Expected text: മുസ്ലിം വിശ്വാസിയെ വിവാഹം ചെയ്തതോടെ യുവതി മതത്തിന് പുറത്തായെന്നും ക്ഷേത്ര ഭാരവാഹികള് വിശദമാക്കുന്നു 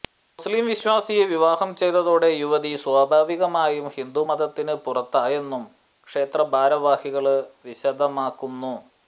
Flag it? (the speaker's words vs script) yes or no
yes